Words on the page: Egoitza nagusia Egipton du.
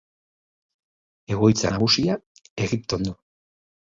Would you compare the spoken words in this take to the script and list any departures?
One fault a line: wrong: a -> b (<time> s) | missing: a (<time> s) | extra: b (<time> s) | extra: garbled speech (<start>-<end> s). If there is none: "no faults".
no faults